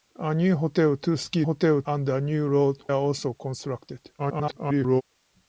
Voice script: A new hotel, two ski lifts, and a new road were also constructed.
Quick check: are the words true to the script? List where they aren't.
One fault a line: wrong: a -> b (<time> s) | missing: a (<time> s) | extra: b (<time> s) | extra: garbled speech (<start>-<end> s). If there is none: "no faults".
wrong: lifts -> hotel (1.4 s)
missing: were (2.8 s)
extra: garbled speech (4.2-5.0 s)